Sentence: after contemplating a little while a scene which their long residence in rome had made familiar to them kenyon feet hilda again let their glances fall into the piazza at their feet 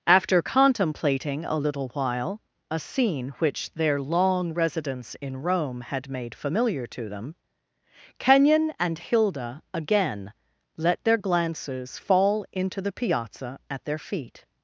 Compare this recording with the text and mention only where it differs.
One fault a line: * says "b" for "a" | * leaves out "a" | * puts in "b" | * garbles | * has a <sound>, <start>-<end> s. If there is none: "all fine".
* says "and" for "feet"